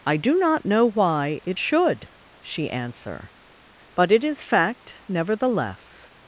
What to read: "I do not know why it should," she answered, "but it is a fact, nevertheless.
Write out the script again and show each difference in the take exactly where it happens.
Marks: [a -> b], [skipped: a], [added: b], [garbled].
"I do not know why it should," she [answered, -> answer] "but it is [skipped: a] fact, nevertheless.